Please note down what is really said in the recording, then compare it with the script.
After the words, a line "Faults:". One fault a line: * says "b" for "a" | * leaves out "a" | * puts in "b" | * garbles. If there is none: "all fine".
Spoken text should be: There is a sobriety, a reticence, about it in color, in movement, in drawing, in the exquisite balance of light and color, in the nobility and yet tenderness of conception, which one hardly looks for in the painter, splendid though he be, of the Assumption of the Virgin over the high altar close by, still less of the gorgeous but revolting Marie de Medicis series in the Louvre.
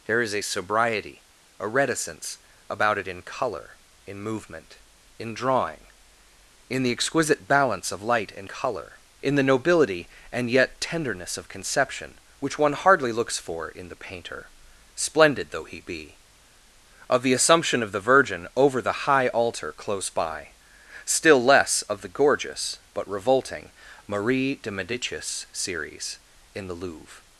There is a sobriety, a reticence, about it in color, in movement, in drawing, in the exquisite balance of light and color, in the nobility and yet tenderness of conception, which one hardly looks for in the painter, splendid though he be, of the Assumption of the Virgin over the high altar close by, still less of the gorgeous but revolting Marie de Medicis series in the Louvre.
Faults:
all fine